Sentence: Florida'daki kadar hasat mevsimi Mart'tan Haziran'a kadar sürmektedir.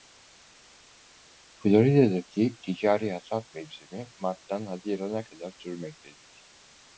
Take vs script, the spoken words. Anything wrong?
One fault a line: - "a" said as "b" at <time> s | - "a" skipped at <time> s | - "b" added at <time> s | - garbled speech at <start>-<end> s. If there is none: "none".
- "kadar" said as "ticari" at 2.6 s